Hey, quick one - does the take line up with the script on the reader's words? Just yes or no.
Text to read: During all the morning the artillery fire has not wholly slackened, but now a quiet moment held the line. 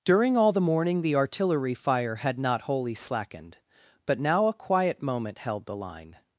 no